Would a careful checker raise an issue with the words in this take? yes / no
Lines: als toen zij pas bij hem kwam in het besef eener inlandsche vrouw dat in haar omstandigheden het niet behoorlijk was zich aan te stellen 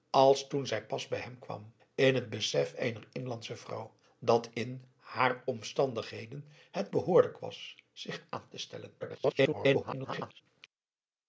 yes